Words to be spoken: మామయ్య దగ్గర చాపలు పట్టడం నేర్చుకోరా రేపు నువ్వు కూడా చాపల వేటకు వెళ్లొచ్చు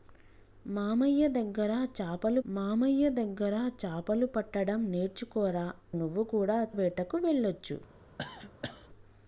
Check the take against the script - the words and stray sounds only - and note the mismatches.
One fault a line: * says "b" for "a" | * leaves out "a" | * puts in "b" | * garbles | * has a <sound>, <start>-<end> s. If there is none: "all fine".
* puts in "మామయ్య దగ్గర చాపలు"
* leaves out "రేపు"
* leaves out "చాపల"
* has a cough, 8.2-8.9 s